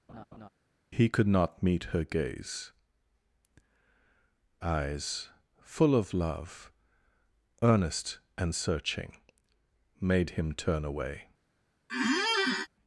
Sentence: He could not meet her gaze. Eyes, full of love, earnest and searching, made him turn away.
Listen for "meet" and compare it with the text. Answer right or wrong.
right